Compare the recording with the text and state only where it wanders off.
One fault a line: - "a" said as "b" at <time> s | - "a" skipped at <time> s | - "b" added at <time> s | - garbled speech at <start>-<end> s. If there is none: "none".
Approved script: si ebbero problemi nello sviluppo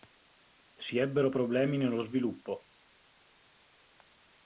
none